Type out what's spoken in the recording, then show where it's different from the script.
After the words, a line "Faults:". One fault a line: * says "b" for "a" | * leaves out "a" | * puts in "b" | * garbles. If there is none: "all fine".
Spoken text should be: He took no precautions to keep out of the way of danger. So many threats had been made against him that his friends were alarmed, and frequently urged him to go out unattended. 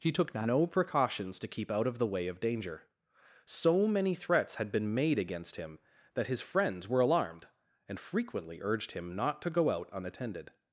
He took no precautions to keep out of the way of danger. So many threats had been made against him that his friends were alarmed, and frequently urged him not to go out unattended.
Faults:
* puts in "not"